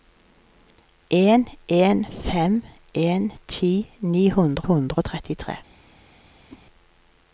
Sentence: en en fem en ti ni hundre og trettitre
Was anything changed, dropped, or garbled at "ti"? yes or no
no